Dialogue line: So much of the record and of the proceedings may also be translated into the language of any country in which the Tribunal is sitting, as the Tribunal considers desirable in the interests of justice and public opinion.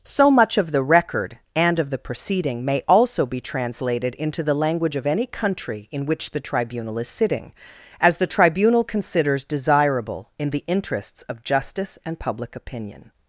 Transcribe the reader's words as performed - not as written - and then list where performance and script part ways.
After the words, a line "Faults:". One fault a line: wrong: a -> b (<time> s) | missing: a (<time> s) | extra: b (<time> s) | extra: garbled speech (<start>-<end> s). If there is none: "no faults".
So much of the record and of the proceeding may also be translated into the language of any country in which the Tribunal is sitting, as the Tribunal considers desirable in the interests of justice and public opinion.
Faults:
wrong: proceedings -> proceeding (2.0 s)